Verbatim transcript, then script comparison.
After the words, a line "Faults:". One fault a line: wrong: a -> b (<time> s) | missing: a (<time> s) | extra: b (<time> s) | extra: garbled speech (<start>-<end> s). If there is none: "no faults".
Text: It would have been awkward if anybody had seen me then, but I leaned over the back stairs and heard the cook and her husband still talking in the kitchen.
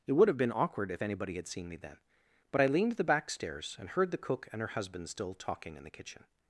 It would have been awkward if anybody had seen me then, but I leaned the back stairs and heard the cook and her husband still talking in the kitchen.
Faults:
missing: over (2.9 s)